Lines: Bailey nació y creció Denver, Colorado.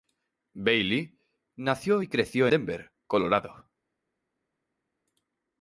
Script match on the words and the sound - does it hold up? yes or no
yes